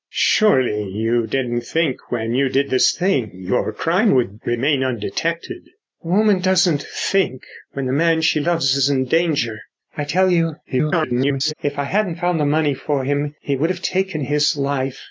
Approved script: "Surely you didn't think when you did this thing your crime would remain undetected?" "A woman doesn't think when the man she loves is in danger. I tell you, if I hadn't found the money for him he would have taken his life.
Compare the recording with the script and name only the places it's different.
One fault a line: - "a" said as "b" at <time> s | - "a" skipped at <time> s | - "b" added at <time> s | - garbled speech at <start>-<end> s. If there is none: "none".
- garbled speech at 10.6-11.5 s